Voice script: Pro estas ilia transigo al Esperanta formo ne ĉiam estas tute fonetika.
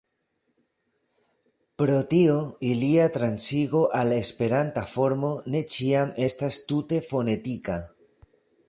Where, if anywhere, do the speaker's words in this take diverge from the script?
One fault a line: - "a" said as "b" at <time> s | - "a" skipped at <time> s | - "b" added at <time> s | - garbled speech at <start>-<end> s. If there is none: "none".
- "estas" said as "tio" at 2.1 s